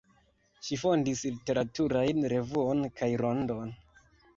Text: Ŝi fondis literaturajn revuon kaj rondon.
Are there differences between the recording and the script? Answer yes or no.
no